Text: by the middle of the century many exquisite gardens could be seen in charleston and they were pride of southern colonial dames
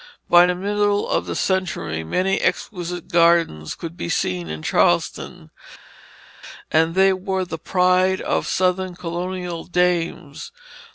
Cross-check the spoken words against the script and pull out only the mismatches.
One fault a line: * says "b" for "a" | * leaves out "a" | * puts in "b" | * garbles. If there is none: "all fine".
* puts in "the"